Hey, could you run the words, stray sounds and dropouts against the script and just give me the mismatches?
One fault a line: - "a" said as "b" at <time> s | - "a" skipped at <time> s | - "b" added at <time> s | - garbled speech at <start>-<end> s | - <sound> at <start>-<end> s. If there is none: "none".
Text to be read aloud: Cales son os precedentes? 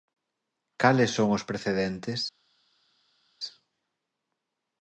none